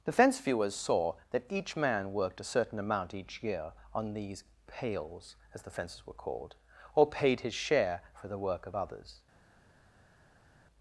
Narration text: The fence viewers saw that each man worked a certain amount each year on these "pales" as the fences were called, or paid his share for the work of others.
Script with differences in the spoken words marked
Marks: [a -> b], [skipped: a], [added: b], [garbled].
The fence viewers saw that each man worked a certain amount each year on these "pales" as the fences were called, or paid his share for the work of others.